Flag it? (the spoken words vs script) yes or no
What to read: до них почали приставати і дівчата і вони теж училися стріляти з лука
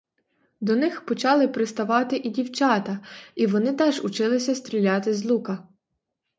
no